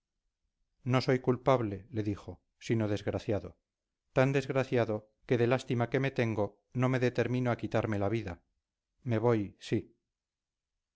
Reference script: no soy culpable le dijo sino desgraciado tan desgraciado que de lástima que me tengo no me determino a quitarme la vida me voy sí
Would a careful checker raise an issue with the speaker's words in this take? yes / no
no